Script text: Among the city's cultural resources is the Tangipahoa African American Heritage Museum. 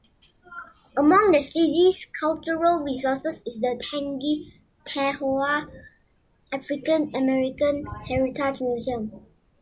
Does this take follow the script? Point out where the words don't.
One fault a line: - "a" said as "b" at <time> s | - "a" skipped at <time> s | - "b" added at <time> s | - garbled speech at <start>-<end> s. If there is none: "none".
none